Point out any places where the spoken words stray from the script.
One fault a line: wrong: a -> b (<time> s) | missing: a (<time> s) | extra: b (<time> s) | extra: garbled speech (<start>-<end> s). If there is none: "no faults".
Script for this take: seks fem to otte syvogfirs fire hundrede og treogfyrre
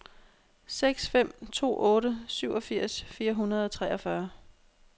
no faults